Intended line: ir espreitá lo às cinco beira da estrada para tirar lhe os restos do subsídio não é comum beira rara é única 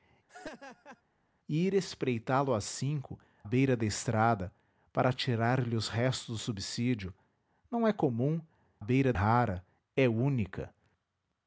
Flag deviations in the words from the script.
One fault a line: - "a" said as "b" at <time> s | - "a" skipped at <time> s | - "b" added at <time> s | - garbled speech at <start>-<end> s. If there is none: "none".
none